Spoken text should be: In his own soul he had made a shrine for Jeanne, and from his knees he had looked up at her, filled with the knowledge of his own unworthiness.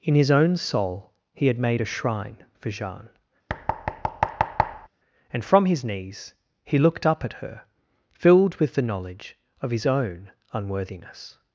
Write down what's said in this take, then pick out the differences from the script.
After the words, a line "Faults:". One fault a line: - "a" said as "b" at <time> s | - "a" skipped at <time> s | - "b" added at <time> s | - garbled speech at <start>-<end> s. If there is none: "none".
In his own soul he had made a shrine for Jeanne, and from his knees he looked up at her, filled with the knowledge of his own unworthiness.
Faults:
- "had" skipped at 6.8 s